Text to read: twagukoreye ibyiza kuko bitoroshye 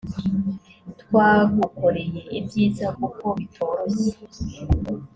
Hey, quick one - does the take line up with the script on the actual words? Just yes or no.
yes